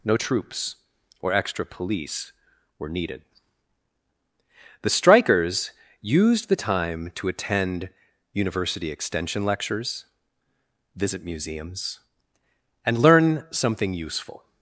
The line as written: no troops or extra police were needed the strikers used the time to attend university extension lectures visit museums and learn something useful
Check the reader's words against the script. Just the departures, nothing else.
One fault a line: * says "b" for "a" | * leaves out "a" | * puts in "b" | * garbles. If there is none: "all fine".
all fine